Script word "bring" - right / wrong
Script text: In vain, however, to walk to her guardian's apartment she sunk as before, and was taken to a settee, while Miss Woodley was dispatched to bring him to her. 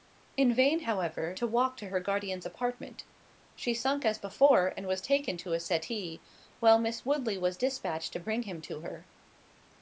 right